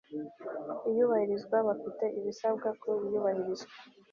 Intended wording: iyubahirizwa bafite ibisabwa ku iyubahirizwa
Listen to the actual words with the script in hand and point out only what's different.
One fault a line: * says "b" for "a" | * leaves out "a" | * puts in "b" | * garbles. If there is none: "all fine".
all fine